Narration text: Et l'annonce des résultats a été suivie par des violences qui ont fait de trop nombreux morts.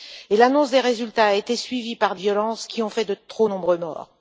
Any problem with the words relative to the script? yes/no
yes